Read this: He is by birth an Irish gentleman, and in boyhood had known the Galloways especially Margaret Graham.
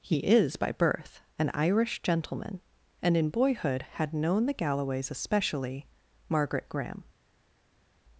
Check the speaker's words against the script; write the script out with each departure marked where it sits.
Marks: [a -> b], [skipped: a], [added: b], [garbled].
He is by birth an Irish gentleman, and in boyhood had known the Galloways especially Margaret Graham.